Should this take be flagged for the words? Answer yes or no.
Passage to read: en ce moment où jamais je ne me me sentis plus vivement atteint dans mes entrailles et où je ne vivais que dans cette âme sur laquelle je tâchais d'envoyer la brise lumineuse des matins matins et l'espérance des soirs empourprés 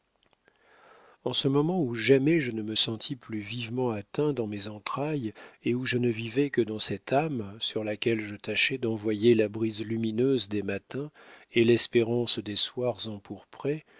yes